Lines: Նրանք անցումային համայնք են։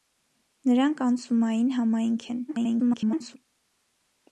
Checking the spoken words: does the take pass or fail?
fail